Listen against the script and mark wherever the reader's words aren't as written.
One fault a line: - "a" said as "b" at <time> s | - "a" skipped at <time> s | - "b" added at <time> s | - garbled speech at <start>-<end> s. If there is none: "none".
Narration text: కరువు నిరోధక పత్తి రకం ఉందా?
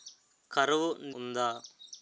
- "నిరోధక పత్తి రకం" skipped at 0.9 s